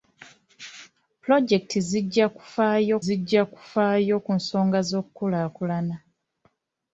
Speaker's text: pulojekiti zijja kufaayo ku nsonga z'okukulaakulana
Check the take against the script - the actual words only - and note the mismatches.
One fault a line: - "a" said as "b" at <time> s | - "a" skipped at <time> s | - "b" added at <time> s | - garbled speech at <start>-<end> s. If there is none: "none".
- "zijja kufaayo" added at 3.0 s